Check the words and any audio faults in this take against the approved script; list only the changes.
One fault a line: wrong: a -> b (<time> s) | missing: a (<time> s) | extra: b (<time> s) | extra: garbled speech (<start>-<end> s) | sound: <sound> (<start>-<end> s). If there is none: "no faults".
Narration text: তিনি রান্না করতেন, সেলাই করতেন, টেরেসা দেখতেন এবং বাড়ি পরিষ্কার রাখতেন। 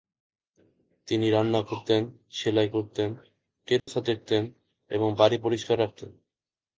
sound: dropout (3.8-3.9 s)